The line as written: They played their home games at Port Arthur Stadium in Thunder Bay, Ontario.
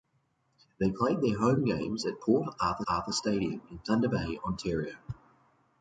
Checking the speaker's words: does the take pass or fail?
fail